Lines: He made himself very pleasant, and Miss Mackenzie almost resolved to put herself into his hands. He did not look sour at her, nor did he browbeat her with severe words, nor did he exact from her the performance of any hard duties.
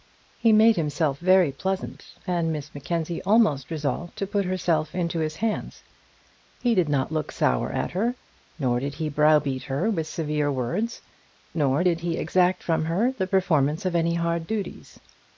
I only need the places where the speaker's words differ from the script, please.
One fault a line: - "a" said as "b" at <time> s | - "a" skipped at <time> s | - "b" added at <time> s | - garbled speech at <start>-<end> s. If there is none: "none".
none